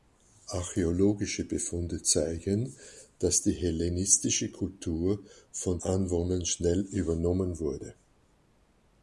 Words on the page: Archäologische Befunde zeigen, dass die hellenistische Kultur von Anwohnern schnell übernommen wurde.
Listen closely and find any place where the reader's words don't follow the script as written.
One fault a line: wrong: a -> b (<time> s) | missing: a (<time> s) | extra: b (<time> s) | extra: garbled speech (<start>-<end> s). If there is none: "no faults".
no faults